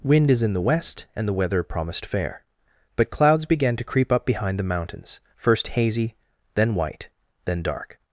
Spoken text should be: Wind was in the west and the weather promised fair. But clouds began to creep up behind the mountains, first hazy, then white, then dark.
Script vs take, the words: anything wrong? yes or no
yes